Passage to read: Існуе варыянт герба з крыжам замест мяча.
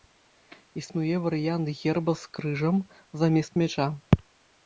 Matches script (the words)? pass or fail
pass